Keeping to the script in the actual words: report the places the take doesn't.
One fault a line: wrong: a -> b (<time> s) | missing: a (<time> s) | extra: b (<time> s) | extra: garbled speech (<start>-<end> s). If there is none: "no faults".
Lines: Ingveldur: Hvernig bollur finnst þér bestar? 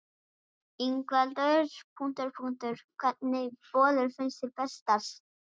no faults